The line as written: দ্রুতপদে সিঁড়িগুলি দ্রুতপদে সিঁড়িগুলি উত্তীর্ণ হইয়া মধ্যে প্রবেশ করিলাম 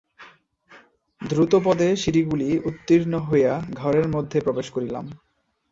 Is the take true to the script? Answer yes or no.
no